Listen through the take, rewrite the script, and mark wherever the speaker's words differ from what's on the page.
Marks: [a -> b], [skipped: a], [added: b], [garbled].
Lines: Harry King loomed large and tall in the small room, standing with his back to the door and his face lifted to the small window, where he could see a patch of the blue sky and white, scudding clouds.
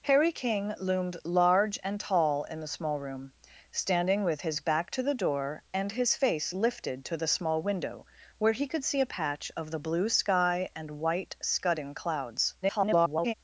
Harry King loomed large and tall in the small room, standing with his back to the door and his face lifted to the small window, where he could see a patch of the blue sky and white, scudding clouds. [garbled]